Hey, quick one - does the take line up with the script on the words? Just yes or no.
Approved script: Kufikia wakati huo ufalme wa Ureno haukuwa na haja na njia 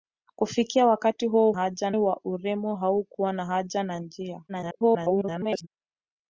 no